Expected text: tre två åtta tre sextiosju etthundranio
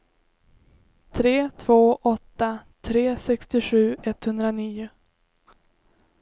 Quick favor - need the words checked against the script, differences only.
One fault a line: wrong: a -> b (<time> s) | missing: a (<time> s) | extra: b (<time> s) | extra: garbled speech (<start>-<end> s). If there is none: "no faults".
no faults